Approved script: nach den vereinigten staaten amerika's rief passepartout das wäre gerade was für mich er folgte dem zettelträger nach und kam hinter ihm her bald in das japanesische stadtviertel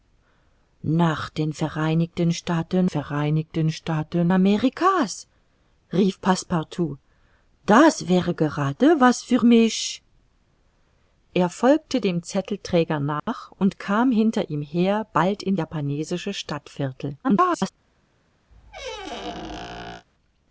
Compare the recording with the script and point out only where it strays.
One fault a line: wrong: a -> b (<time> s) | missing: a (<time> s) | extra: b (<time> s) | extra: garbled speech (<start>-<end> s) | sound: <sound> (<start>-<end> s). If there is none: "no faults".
extra: vereinigten staaten (2.9 s)
sound: dropout (13.2-13.3 s)
missing: das (15.6 s)
extra: garbled speech (17.2-17.7 s)
sound: squeak (18.5-20.0 s)